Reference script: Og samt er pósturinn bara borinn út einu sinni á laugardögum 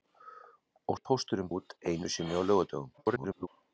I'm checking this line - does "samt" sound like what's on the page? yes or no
no